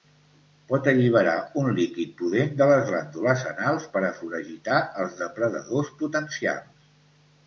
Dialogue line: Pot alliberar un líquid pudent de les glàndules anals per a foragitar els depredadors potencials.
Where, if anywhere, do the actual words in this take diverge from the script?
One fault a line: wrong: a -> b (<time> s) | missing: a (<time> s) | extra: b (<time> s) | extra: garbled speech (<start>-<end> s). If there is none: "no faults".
no faults